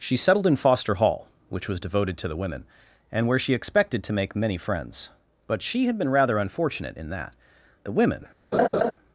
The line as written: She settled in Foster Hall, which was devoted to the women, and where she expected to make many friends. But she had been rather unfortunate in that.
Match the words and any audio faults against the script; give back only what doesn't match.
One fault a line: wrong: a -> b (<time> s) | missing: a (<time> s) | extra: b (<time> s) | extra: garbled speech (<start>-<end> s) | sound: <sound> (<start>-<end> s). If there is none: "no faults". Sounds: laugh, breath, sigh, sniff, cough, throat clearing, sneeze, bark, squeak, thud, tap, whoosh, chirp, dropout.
extra: The women (7.8 s)
sound: laugh (8.5-8.9 s)